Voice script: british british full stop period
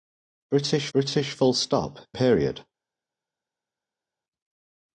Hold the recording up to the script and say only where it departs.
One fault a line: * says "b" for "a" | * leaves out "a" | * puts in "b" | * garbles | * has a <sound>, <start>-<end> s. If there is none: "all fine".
all fine